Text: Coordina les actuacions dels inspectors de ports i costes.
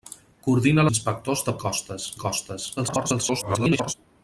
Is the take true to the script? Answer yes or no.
no